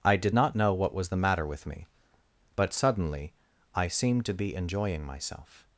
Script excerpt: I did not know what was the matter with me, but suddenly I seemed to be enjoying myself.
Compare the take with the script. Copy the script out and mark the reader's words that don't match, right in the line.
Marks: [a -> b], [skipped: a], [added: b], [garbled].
I did not know what was the matter with me, but suddenly I seemed to be enjoying myself.